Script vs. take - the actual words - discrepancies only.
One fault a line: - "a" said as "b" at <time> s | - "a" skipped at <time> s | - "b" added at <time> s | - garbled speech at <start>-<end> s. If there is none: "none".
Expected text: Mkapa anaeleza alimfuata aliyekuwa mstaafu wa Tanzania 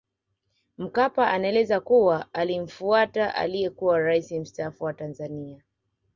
- "kuwa" added at 1.8 s
- "rais" added at 4.0 s